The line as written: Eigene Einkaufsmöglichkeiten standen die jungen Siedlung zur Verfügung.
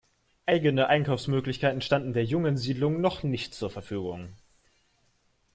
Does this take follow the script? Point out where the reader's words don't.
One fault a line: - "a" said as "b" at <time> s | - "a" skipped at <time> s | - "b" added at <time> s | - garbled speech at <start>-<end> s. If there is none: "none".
- "die" said as "der" at 2.1 s
- "noch nicht" added at 3.0 s